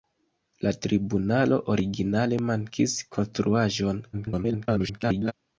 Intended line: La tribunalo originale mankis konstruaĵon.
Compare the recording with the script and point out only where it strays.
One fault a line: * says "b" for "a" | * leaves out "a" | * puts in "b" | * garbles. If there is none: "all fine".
* garbles